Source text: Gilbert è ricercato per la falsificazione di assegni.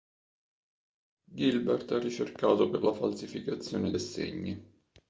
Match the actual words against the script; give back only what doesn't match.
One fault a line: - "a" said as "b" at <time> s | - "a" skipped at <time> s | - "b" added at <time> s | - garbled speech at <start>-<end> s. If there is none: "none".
- "di" skipped at 3.9 s